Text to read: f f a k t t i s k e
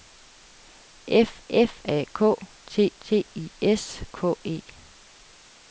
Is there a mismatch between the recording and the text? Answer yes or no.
no